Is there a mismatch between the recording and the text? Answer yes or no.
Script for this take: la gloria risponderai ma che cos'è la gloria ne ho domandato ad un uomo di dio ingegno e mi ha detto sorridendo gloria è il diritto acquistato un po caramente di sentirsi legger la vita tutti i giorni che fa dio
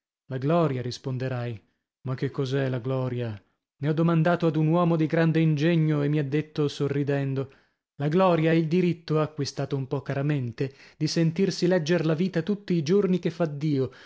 yes